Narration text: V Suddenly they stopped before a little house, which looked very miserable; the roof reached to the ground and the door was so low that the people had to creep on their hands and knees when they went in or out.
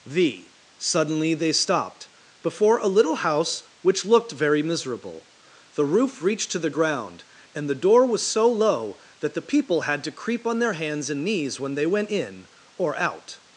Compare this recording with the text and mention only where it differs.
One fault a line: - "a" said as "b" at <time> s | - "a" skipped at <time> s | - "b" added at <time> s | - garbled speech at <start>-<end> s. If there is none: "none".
none